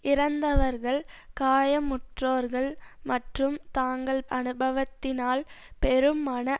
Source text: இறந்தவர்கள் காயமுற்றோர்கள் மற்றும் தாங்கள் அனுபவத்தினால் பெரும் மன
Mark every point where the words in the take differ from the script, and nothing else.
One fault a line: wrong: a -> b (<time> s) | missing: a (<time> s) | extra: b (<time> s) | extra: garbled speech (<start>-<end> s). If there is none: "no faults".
no faults